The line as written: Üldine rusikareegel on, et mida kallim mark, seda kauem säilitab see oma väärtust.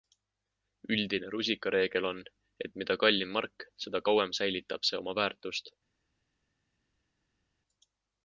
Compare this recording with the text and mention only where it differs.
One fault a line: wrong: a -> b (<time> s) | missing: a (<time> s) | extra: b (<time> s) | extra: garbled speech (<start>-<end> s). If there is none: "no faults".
no faults